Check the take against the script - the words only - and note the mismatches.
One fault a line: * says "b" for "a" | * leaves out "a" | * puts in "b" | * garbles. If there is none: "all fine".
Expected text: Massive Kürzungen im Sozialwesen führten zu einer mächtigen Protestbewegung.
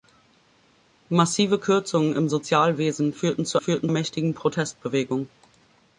* says "führten" for "einer"